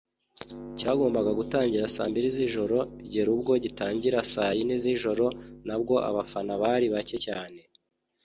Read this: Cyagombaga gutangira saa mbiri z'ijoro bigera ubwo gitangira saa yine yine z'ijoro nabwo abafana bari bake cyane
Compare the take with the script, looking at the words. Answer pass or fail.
fail